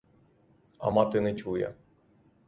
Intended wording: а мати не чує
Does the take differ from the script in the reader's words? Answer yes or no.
no